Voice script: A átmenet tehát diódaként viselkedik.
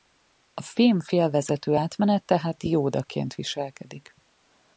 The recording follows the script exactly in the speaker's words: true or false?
false